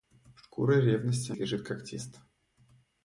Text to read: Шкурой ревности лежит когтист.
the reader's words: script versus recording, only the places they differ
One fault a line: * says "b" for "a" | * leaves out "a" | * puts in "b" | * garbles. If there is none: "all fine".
all fine